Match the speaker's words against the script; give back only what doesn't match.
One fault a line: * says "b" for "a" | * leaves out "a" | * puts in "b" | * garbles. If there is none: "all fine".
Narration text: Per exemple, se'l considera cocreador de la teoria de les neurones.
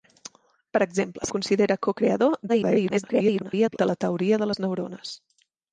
* leaves out "se'l"
* garbles